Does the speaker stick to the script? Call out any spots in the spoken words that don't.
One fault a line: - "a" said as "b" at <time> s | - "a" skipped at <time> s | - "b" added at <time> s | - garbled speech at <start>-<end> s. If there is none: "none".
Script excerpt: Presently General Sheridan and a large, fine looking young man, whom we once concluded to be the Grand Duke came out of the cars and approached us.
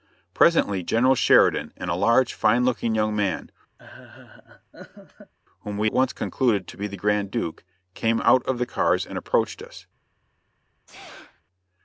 none